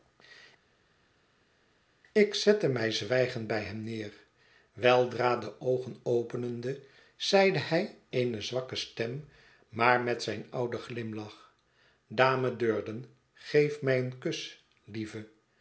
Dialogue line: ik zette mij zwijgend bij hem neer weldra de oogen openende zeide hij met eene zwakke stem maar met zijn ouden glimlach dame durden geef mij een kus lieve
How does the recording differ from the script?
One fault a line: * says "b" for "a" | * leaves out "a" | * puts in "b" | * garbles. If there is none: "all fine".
* leaves out "met"